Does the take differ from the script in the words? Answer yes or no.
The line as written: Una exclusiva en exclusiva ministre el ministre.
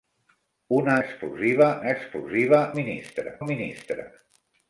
no